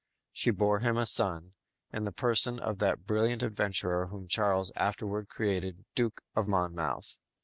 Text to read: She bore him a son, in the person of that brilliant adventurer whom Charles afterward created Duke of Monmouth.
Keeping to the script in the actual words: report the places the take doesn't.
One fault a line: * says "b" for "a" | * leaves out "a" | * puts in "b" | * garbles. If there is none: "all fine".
all fine